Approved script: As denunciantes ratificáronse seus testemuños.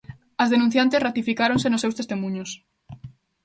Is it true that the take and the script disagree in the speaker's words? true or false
true